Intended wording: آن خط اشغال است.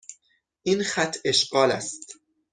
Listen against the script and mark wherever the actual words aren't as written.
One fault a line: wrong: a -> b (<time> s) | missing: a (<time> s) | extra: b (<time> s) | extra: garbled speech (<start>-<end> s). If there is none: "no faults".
wrong: آن -> این (0.6 s)